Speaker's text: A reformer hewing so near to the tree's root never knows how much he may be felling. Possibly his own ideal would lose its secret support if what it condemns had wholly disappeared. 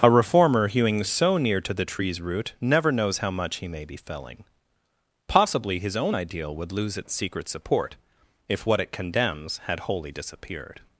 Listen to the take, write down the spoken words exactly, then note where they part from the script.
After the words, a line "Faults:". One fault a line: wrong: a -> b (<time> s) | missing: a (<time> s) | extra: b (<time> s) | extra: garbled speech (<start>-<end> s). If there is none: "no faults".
A reformer hewing so near to the tree's root never knows how much he may be felling. Possibly his own ideal would lose its secret support if what it condemns had wholly disappeared.
Faults:
no faults